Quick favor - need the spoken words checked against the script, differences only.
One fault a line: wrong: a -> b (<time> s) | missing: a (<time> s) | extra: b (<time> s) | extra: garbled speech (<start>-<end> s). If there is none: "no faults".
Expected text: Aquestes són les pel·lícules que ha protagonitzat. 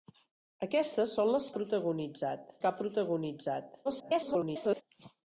wrong: pel·lícules -> protagonitzat (1.5 s)
extra: garbled speech (3.8-4.8 s)